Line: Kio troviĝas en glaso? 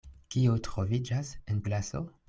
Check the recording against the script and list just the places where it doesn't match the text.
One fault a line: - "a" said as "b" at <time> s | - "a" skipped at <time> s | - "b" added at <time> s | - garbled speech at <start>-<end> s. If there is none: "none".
none